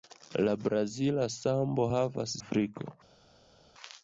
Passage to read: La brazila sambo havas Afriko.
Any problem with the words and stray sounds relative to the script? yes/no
no